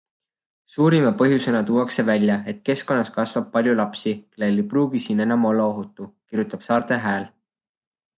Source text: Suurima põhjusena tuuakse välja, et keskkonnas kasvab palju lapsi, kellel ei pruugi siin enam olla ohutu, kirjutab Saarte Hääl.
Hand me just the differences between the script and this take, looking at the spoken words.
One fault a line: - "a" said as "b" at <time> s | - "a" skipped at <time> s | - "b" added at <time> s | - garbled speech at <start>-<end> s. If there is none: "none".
none